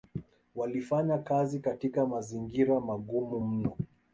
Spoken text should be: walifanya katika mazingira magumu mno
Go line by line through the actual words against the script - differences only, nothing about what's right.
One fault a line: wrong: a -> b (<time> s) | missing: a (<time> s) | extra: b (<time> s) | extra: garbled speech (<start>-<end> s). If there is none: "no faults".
extra: kazi (1.2 s)